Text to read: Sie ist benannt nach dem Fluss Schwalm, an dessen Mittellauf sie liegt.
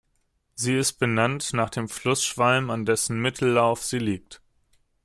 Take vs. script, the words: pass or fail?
pass